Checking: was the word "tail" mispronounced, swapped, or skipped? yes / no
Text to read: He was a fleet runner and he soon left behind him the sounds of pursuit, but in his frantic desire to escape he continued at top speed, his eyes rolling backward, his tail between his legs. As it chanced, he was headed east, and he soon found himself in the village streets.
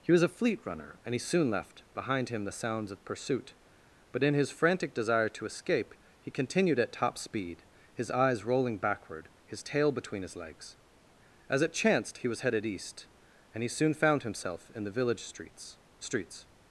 no